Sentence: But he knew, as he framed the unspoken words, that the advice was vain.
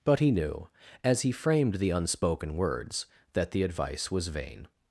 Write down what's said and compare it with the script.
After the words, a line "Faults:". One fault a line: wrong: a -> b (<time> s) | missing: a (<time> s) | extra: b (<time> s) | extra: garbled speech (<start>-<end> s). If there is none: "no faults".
But he knew, as he framed the unspoken words, that the advice was vain.
Faults:
no faults